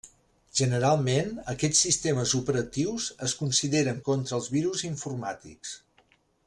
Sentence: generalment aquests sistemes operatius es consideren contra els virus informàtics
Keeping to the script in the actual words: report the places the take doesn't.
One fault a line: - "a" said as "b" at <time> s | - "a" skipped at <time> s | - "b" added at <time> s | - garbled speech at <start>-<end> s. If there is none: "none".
none